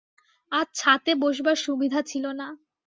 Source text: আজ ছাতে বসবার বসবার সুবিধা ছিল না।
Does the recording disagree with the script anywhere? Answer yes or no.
yes